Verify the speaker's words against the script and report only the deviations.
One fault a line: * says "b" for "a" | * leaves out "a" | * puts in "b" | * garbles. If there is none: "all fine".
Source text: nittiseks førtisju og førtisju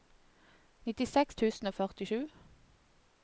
* says "tusen" for "førtisju"